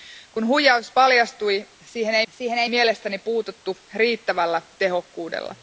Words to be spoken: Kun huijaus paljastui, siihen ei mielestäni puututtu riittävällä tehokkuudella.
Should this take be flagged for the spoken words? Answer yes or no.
yes